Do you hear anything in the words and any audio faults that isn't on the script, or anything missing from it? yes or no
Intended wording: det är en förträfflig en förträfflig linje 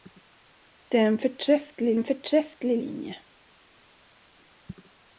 no